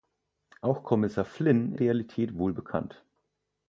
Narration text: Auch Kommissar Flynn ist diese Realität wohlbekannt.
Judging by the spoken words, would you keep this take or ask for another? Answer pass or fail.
fail